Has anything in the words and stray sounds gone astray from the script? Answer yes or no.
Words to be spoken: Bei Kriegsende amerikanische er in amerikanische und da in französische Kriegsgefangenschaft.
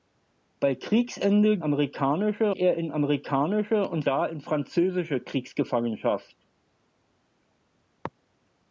no